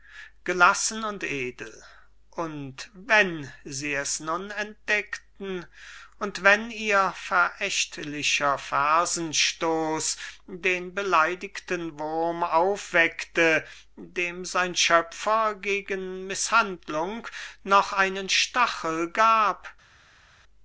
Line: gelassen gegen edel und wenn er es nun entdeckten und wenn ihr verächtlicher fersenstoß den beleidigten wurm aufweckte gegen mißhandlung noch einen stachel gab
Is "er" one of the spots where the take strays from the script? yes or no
yes